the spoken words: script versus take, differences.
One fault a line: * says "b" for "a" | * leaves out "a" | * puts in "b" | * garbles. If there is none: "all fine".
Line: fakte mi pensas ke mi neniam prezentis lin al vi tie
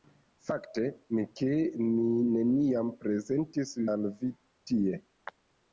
* leaves out "pensas"
* leaves out "lin"